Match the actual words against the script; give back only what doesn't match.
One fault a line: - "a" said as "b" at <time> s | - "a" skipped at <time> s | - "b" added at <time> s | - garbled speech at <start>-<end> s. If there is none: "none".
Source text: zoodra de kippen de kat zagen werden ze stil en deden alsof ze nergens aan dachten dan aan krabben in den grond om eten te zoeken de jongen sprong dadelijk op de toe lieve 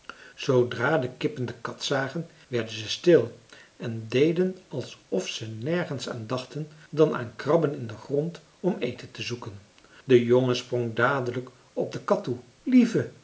- "kat" added at 12.0 s